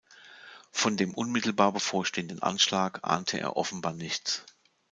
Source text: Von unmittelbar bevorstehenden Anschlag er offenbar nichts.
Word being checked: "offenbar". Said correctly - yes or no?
yes